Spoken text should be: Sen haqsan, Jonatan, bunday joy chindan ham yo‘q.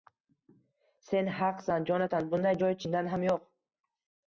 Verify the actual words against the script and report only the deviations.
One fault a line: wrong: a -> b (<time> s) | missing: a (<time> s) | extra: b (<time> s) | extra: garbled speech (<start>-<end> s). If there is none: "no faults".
no faults